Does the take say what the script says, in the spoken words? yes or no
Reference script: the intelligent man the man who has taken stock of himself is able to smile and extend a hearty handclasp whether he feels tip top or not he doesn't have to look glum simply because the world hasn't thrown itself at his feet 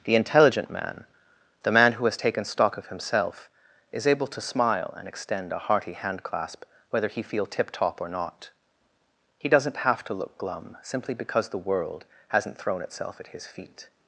no